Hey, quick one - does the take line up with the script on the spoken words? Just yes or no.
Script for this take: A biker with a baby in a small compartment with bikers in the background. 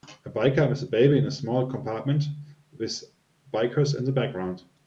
yes